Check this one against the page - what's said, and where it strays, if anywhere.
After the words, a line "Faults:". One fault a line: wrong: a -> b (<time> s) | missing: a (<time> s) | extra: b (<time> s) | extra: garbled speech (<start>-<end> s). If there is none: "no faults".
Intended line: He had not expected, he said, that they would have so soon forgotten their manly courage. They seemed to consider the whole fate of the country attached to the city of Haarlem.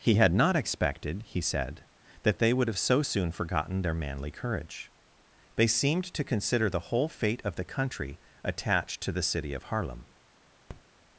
He had not expected, he said, that they would have so soon forgotten their manly courage. They seemed to consider the whole fate of the country attached to the city of Haarlem.
Faults:
no faults